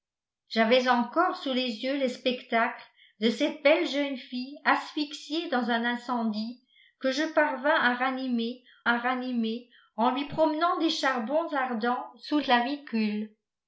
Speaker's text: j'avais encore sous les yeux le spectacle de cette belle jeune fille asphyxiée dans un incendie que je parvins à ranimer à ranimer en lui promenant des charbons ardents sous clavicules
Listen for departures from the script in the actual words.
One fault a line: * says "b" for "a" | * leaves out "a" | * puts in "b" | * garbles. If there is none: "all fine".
all fine